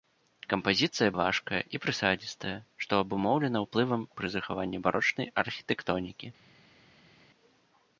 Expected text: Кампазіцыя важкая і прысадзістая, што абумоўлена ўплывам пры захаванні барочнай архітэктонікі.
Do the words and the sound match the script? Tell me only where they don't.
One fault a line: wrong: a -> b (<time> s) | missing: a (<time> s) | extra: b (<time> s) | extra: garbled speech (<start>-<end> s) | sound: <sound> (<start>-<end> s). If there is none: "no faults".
no faults